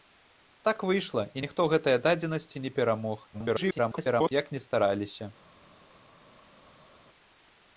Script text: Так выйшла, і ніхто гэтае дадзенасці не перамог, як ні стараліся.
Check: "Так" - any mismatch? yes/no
no